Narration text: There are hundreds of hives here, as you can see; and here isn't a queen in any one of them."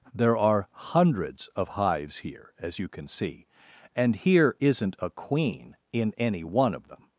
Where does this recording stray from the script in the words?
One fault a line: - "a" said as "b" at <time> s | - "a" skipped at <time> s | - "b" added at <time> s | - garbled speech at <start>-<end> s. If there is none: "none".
none